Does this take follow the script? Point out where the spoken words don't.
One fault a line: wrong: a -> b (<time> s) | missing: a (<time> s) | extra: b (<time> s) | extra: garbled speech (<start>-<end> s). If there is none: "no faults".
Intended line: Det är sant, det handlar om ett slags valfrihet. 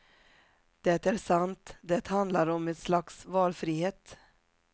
no faults